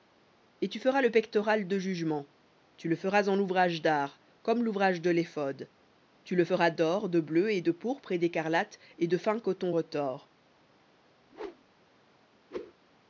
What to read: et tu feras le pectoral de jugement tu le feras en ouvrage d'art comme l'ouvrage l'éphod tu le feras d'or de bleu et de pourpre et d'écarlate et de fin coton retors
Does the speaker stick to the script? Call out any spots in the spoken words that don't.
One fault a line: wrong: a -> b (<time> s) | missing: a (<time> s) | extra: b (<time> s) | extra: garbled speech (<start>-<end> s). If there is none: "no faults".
extra: de (5.0 s)